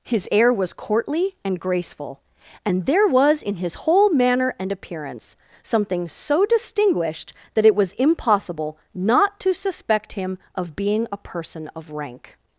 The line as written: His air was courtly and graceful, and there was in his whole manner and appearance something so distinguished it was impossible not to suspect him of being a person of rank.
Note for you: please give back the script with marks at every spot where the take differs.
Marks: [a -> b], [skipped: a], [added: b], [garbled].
His air was courtly and graceful, and there was in his whole manner and appearance something so distinguished [added: that] it was impossible not to suspect him of being a person of rank.